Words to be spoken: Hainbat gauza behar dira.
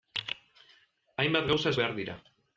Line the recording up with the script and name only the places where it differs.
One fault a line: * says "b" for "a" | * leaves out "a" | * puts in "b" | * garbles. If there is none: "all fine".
all fine